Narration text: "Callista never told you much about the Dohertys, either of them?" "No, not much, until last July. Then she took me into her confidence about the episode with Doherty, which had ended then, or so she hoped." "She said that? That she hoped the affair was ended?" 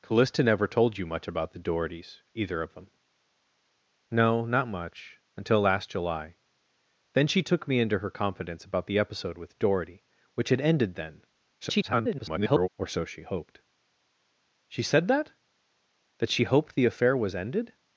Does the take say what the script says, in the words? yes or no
no